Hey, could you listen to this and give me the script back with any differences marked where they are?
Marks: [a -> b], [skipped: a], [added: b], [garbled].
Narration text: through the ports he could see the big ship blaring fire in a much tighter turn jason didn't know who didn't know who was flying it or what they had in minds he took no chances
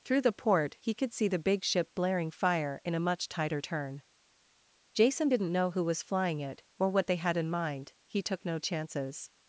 through the [ports -> port] he could see the big ship blaring fire in a much tighter turn jason didn't know who [skipped: didn't know who] was flying it or what they had in [minds -> mind] he took no chances